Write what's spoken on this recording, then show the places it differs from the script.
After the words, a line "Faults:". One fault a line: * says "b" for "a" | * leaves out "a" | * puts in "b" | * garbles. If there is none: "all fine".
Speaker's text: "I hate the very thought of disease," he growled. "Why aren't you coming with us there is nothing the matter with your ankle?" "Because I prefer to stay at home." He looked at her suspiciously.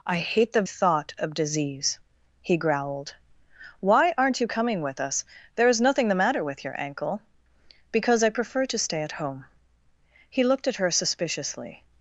"I hate the thought of disease," he growled. "Why aren't you coming with us there is nothing the matter with your ankle?" "Because I prefer to stay at home." He looked at her suspiciously.
Faults:
* leaves out "very"